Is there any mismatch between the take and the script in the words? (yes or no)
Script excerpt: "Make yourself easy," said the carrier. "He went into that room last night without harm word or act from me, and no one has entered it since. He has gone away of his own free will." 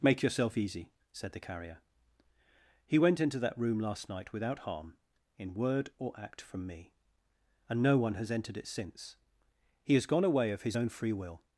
yes